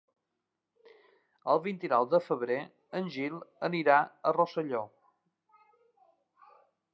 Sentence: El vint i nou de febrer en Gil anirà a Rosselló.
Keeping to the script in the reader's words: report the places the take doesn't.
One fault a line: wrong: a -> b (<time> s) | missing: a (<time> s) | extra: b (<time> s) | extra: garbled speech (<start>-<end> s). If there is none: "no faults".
no faults